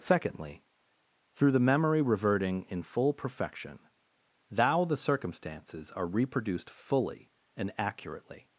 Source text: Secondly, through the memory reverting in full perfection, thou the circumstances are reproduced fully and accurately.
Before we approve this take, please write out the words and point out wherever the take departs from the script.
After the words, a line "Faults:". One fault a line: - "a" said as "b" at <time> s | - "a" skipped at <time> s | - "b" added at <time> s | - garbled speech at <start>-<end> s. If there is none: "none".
Secondly, through the memory reverting in full perfection, thou the circumstances are reproduced fully and accurately.
Faults:
none